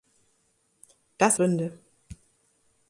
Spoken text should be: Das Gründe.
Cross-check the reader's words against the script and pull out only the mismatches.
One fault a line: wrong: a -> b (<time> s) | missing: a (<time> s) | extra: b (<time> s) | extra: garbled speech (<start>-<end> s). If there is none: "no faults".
no faults